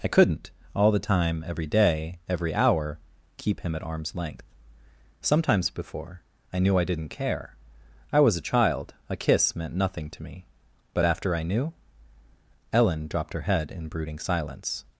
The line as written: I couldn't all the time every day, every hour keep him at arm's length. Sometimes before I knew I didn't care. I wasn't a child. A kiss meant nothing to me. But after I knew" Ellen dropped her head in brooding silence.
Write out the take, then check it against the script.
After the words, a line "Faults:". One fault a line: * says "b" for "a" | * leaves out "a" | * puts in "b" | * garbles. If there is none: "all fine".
I couldn't all the time every day, every hour keep him at arm's length. Sometimes before I knew I didn't care. I was a child. A kiss meant nothing to me. But after I knew" Ellen dropped her head in brooding silence.
Faults:
* says "was" for "wasn't"